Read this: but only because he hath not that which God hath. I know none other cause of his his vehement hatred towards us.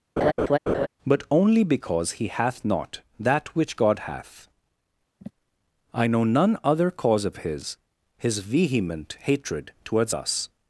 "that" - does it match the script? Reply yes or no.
yes